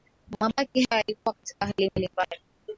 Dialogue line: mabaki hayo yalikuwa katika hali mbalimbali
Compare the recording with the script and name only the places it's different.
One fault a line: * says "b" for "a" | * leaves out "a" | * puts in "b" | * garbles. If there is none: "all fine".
all fine